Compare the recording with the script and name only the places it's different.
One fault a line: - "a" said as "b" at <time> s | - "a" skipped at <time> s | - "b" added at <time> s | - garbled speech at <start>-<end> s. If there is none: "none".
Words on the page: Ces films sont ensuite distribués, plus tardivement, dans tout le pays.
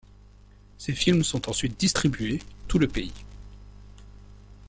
- "plus tardivement dans" skipped at 2.4 s